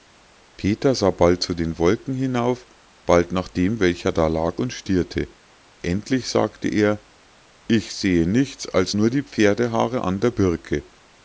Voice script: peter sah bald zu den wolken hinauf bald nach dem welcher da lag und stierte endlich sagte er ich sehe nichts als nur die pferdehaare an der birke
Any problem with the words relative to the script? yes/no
no